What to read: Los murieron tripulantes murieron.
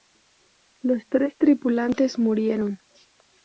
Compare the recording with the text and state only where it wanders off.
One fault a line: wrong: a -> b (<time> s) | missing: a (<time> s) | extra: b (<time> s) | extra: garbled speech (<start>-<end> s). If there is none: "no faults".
wrong: murieron -> tres (1.1 s)